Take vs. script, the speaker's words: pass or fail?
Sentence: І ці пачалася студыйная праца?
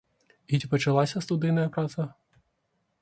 pass